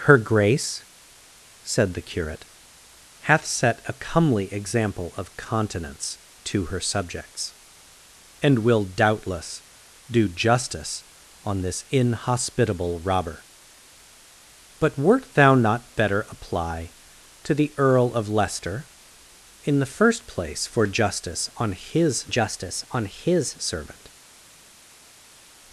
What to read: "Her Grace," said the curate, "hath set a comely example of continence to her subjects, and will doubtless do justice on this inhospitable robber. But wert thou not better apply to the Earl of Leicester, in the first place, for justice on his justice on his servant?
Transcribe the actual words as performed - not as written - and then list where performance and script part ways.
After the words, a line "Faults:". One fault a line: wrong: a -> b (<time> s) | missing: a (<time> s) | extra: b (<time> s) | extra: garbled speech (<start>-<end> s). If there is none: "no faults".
"Her Grace," said the curate, "hath set a comely example of continence to her subjects, and will doubtless do justice on this inhospitable robber. But wert thou not better apply to the Earl of Leicester, in the first place, for justice on his justice on his servant?
Faults:
no faults